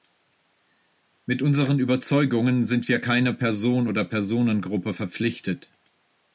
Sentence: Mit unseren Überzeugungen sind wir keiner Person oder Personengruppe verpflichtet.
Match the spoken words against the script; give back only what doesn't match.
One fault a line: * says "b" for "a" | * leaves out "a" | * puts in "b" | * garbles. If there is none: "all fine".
all fine